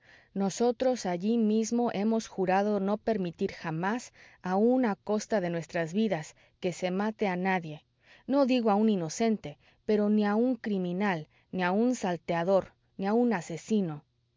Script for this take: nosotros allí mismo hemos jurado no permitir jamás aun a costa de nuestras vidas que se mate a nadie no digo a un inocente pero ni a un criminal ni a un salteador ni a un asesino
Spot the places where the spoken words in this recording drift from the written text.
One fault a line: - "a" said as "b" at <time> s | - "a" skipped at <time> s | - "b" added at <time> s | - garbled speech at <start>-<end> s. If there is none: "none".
none